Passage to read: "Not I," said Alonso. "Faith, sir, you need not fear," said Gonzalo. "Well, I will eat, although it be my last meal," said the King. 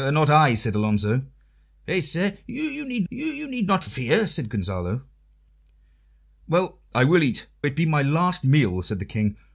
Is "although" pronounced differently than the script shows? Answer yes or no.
yes